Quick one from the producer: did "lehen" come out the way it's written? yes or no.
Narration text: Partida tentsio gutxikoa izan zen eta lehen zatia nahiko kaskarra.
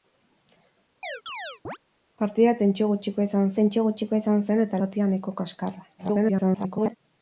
no